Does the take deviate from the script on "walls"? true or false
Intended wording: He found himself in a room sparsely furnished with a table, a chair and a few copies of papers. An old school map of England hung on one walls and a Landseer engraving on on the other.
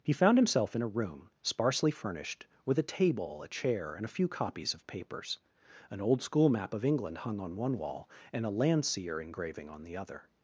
true